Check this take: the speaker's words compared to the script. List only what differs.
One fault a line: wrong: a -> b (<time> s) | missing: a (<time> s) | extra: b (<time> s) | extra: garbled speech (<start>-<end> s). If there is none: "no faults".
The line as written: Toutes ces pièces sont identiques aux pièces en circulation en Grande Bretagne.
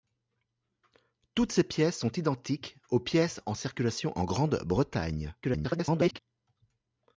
extra: garbled speech (5.4-6.2 s)